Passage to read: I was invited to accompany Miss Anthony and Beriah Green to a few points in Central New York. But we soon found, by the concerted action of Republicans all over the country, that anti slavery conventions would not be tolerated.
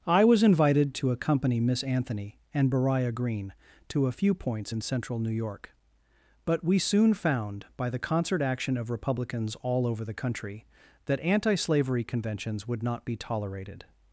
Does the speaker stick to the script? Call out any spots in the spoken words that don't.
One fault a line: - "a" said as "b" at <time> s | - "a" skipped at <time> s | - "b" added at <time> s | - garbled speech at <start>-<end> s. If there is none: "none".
- "concerted" said as "concert" at 8.0 s